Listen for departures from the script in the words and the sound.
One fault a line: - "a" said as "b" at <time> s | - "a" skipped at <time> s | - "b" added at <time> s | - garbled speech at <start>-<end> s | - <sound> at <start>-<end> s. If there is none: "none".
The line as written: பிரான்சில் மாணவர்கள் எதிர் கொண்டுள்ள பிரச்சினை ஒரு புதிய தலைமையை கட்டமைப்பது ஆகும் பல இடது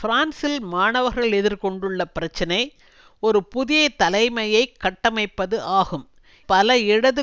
none